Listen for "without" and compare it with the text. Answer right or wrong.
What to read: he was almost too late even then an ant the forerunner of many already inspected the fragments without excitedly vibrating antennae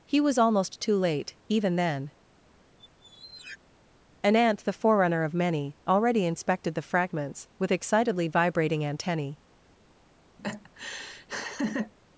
wrong